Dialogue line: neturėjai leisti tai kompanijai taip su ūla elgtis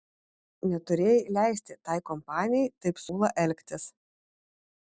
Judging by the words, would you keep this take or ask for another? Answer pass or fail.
fail